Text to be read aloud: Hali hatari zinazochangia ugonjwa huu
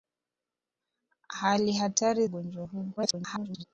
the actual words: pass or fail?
fail